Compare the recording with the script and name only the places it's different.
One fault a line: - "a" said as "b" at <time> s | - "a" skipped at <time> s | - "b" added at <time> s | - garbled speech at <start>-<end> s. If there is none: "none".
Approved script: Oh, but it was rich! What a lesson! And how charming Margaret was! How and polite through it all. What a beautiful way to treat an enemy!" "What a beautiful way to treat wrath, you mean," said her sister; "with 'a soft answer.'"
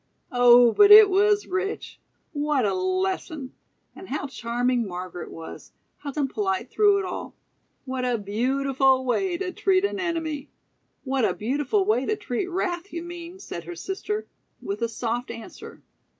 none